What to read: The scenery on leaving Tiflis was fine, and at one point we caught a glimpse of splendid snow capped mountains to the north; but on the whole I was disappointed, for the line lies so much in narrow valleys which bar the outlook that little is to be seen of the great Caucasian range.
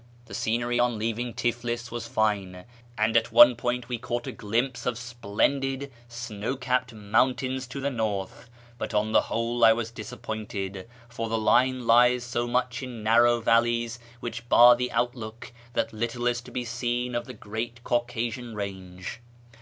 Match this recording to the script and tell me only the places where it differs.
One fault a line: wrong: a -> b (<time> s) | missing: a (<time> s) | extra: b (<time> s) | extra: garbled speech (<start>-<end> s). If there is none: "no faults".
no faults